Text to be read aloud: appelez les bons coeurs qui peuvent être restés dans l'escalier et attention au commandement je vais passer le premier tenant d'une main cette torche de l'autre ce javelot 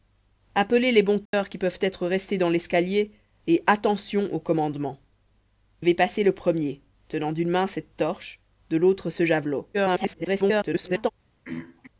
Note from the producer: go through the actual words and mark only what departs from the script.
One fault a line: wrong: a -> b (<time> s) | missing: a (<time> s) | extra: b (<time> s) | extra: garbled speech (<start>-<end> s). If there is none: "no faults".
missing: je (5.0 s)
extra: garbled speech (9.7-11.1 s)